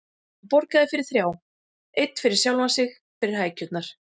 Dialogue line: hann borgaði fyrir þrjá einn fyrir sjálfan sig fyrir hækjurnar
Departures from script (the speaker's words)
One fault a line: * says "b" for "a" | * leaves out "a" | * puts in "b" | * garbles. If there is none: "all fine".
all fine